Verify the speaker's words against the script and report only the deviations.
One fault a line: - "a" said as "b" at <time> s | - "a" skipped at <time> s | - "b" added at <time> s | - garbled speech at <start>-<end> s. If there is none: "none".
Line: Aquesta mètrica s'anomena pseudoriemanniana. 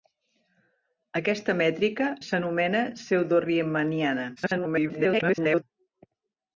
- garbled speech at 4.4-5.6 s